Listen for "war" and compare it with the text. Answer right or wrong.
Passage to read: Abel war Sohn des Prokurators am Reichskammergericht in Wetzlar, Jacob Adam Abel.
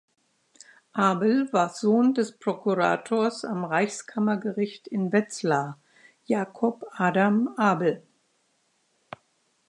right